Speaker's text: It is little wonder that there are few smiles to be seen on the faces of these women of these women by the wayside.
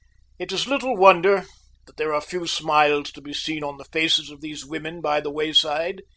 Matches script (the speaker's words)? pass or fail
fail